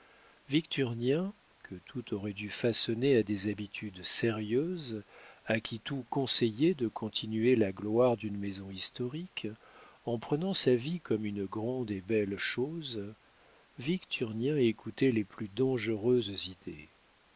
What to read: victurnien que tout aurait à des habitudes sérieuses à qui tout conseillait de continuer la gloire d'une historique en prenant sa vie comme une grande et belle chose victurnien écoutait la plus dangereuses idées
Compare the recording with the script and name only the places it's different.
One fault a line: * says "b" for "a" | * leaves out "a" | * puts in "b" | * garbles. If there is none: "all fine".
* puts in "dû façonner"
* puts in "maison"
* says "les" for "la"